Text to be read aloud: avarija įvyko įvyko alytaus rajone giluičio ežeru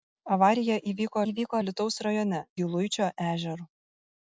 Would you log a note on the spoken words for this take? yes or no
no